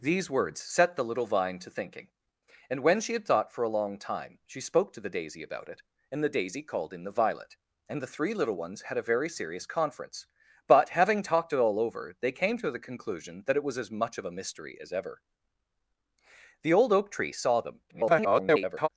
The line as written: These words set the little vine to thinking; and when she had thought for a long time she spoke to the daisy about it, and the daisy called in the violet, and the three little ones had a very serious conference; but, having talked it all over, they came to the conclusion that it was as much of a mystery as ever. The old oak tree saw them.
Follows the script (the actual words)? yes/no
no